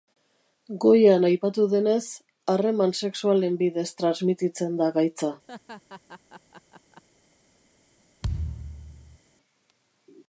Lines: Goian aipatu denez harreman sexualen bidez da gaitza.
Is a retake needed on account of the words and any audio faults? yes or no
yes